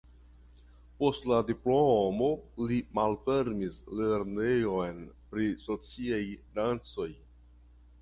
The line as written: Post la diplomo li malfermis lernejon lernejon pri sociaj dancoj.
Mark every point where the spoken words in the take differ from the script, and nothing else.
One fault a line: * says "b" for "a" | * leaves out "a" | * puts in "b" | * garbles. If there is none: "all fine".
* leaves out "lernejon"